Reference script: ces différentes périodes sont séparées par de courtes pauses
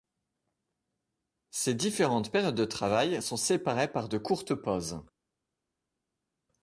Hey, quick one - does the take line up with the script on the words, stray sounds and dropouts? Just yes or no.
no